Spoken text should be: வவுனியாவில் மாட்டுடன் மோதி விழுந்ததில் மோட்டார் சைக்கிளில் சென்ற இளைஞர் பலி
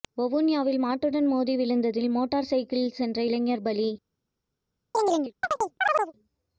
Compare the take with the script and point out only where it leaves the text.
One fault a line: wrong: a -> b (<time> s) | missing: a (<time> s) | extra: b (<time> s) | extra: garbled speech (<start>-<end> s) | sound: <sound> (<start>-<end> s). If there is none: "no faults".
sound: chirp (4.9-6.1 s)